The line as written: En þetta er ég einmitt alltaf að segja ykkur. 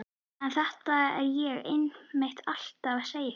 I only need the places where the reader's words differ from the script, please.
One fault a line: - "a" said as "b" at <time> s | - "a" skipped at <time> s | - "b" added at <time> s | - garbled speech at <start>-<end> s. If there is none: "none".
none